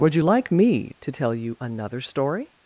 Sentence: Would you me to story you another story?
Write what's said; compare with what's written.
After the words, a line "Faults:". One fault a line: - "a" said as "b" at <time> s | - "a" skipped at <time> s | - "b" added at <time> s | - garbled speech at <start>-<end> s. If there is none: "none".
Would you like me to tell you another story?
Faults:
- "like" added at 0.2 s
- "story" said as "tell" at 1.1 s